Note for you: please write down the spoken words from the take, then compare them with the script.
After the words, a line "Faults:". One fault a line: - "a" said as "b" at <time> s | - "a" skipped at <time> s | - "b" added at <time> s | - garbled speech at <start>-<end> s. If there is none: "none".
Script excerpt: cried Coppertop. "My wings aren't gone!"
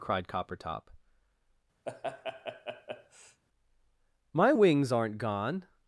cried Coppertop. "My wings aren't gone!"
Faults:
none